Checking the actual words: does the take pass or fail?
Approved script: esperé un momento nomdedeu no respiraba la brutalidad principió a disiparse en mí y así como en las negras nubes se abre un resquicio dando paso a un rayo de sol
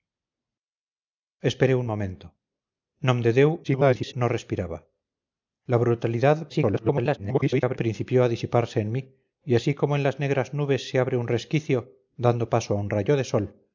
fail